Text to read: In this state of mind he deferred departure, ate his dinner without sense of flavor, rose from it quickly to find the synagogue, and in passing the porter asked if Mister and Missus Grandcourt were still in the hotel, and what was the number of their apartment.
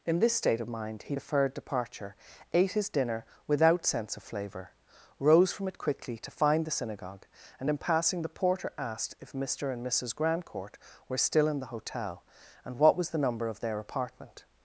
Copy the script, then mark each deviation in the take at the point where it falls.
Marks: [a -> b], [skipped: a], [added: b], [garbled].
In this state of mind he deferred departure, ate his dinner without sense of flavor, rose from it quickly to find the synagogue, and in passing the porter asked if Mister and Missus Grandcourt were still in the hotel, and what was the number of their apartment.